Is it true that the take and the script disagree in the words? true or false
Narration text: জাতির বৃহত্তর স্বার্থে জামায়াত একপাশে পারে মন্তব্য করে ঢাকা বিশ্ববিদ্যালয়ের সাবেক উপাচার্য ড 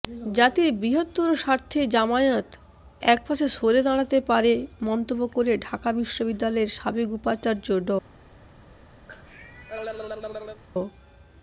true